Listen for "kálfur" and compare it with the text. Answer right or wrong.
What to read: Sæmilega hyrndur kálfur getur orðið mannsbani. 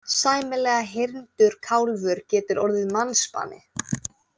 right